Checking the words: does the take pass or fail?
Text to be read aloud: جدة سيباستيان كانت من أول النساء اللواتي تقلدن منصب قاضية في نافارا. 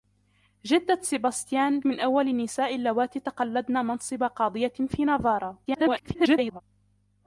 fail